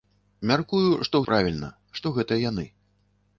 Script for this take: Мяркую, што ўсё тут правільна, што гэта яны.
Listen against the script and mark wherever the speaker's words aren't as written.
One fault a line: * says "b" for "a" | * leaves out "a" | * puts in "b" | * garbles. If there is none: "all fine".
* leaves out "ўсё тут"